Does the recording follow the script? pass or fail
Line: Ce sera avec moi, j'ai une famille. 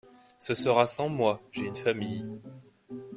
fail